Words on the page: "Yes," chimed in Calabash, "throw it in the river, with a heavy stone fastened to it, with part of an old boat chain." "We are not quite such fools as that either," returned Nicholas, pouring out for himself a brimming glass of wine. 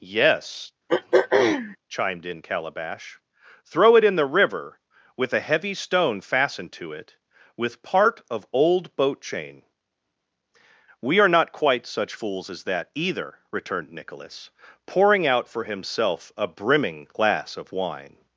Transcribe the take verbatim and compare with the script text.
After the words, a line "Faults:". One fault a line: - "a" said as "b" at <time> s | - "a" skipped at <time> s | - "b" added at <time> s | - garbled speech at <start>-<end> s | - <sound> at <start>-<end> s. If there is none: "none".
"Yes," chimed in Calabash, "throw it in the river, with a heavy stone fastened to it, with part of old boat chain." "We are not quite such fools as that either," returned Nicholas, pouring out for himself a brimming glass of wine.
Faults:
- throat clearing at 0.9-1.8 s
- "an" skipped at 8.5 s